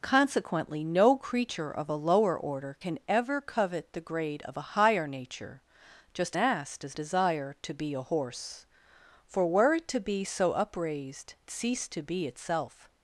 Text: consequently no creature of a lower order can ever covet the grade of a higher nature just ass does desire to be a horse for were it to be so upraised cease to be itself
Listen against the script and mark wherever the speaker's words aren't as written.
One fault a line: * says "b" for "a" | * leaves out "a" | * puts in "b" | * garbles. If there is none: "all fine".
all fine